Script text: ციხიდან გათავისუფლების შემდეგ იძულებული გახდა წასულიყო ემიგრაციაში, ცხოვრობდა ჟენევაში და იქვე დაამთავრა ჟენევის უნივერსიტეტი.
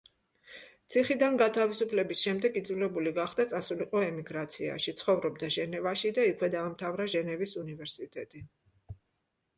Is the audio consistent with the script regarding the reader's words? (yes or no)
yes